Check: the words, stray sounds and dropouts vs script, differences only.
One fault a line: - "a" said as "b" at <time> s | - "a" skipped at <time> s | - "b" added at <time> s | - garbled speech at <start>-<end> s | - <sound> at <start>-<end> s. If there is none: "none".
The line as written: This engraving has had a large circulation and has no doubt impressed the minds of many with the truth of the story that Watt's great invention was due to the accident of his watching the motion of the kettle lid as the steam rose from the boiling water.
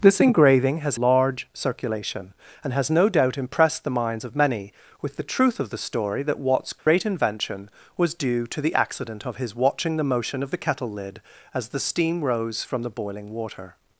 - "had a" skipped at 1.0 s
- dropout at 6.8-6.9 s